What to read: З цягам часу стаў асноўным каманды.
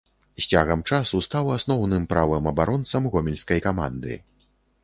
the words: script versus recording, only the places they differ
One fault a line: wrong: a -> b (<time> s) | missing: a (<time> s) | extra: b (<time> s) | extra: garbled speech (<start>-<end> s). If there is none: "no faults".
extra: правым абаронцам гомельскай (2.1 s)